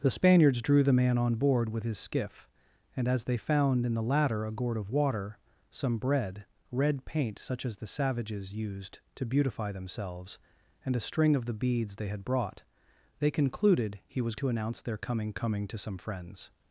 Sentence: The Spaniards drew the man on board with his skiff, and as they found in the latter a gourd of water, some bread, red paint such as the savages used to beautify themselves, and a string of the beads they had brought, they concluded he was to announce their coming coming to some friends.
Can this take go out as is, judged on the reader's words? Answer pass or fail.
pass